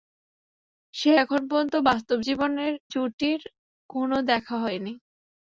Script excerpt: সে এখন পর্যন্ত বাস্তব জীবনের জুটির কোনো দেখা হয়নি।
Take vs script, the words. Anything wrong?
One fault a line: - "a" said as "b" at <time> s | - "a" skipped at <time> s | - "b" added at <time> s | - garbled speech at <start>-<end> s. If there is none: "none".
none